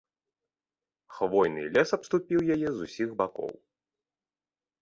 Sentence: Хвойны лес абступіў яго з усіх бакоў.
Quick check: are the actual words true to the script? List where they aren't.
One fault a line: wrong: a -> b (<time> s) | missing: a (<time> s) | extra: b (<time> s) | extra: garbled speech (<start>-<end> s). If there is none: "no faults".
wrong: яго -> яе (2.6 s)